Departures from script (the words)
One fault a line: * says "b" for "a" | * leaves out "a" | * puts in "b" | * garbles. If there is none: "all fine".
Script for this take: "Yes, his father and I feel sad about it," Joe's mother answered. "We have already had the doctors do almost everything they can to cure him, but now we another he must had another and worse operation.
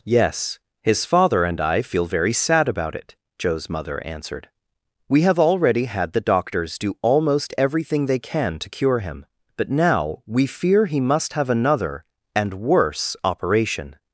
* puts in "very"
* says "fear" for "another"
* says "have" for "had"